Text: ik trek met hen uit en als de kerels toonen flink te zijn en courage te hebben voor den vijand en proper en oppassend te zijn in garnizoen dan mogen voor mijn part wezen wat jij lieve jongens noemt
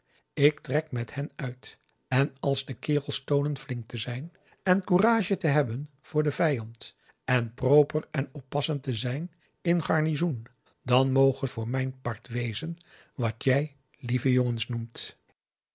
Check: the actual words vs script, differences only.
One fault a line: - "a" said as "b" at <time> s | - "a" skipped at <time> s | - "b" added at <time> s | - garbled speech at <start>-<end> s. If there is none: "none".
none